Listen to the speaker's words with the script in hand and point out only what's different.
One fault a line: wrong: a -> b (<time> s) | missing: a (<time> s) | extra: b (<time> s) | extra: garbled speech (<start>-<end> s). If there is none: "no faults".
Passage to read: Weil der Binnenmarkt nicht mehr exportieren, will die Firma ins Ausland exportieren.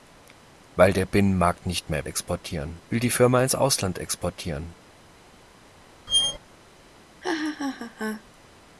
no faults